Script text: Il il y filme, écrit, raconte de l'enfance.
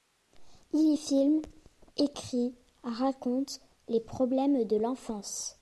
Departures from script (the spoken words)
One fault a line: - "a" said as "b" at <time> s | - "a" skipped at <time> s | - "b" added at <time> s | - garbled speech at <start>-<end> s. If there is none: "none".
- "il" skipped at 0.9 s
- "les problèmes" added at 3.9 s